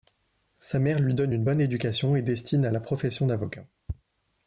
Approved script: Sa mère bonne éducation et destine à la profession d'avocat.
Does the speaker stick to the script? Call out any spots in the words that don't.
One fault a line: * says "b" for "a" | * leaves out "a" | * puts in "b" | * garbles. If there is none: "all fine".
* puts in "lui donne une"